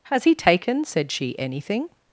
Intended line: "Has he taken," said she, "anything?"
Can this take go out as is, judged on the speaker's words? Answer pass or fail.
pass